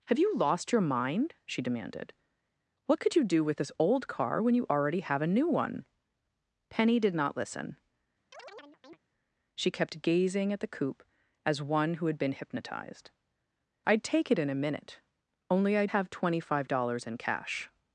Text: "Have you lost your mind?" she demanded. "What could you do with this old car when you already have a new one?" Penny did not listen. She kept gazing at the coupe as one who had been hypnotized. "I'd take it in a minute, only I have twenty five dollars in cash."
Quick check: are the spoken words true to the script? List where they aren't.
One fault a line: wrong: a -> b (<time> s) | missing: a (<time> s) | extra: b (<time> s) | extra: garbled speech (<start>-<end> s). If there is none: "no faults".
no faults